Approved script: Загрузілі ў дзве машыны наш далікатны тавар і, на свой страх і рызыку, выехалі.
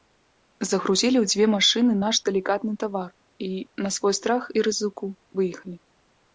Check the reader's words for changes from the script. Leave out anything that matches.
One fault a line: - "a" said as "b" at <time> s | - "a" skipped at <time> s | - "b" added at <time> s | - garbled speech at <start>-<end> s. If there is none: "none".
none